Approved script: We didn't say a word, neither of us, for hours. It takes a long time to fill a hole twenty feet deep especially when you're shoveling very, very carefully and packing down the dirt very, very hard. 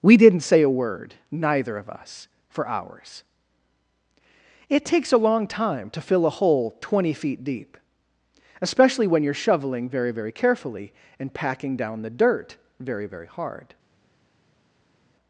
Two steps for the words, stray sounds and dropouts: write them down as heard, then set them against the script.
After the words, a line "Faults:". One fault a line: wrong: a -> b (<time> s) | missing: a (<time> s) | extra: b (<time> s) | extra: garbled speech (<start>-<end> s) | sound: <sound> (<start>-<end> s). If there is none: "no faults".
We didn't say a word, neither of us, for hours. It takes a long time to fill a hole twenty feet deep especially when you're shoveling very, very carefully and packing down the dirt very, very hard.
Faults:
no faults